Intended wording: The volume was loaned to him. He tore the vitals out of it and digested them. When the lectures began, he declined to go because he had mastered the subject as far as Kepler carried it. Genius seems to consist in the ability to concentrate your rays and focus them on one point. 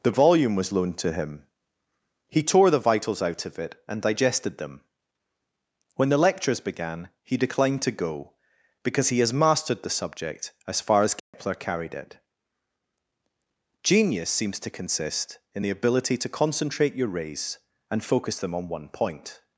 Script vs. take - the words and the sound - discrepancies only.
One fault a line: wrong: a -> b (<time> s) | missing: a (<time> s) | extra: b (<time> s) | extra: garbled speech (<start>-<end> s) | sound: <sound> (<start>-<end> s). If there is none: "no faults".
wrong: had -> has (9.2 s)
sound: dropout (11.2-11.3 s)